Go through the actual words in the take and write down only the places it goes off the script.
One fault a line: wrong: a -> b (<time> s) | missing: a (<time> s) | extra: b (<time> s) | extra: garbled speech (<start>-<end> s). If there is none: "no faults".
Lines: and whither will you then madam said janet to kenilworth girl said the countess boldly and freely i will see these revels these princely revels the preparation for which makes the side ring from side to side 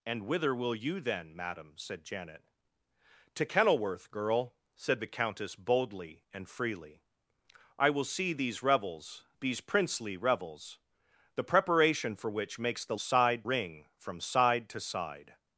no faults